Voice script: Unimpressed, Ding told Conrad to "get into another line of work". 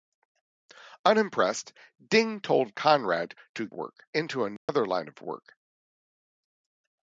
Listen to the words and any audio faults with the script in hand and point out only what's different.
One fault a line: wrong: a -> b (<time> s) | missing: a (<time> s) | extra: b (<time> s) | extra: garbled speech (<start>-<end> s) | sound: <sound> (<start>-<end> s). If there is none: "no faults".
wrong: get -> work (3.7 s)
sound: dropout (4.6-4.7 s)